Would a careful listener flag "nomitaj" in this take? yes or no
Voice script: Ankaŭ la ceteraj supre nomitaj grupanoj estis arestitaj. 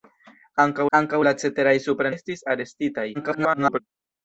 yes